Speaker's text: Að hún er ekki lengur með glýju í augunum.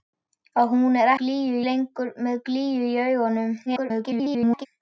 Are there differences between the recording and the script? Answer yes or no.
yes